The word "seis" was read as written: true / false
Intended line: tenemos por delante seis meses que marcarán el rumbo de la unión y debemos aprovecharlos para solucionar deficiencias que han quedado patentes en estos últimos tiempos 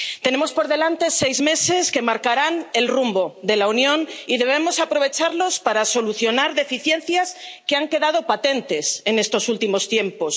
true